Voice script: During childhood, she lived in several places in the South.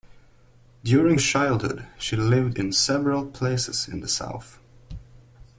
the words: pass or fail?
pass